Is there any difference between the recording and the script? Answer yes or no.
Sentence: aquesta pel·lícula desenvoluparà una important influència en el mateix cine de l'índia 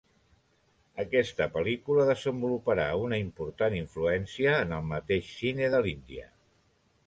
no